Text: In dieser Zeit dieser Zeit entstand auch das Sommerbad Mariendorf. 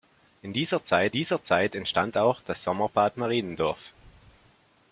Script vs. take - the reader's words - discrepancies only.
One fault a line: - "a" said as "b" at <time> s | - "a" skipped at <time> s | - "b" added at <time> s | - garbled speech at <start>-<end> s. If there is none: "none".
none